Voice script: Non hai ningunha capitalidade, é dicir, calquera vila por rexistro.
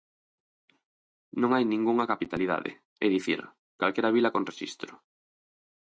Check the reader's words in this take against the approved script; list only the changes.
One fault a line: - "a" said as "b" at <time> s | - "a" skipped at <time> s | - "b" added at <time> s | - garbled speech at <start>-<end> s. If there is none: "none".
- "por" said as "con" at 4.3 s